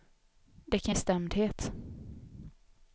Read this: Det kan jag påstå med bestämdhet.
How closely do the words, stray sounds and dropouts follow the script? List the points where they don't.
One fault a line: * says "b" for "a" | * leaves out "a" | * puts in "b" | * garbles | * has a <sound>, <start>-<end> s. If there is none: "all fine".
* leaves out "jag påstå med"